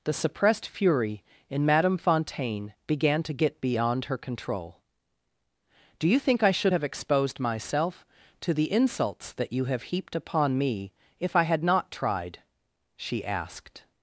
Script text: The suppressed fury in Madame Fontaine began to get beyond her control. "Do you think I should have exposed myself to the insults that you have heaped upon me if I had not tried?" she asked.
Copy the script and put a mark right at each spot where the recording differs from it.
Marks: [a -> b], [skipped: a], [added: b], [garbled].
The suppressed fury in Madame Fontaine began to get beyond her control. "Do you think I should have exposed myself to the insults that you have heaped upon me if I had not tried?" she asked.